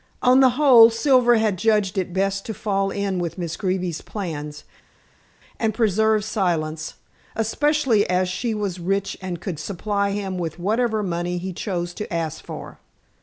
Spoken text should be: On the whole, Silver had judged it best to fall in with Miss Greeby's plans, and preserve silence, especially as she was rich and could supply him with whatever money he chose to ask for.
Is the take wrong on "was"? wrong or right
right